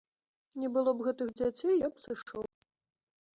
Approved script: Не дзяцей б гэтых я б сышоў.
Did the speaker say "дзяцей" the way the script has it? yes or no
no